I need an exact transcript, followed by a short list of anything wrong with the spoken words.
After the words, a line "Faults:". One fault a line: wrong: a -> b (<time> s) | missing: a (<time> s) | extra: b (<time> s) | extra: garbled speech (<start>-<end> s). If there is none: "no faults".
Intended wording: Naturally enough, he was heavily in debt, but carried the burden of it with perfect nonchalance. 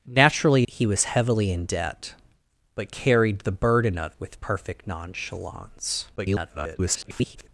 Naturally he was heavily in debt, but carried the burden of with perfect nonchalance. [garbled]
Faults:
missing: enough (0.7 s)
missing: it (4.1 s)
extra: garbled speech (6.2-7.5 s)